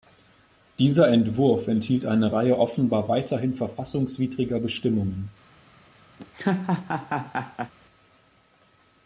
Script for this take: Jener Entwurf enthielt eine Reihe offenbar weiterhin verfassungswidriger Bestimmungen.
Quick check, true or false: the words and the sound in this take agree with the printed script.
false